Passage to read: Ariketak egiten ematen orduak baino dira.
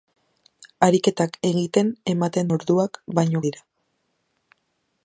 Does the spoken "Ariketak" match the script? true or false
true